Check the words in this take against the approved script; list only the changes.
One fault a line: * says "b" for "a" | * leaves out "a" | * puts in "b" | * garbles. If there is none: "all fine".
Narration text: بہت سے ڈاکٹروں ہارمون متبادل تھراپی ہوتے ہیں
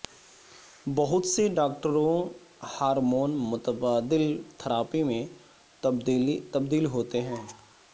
* puts in "میں تبدیل"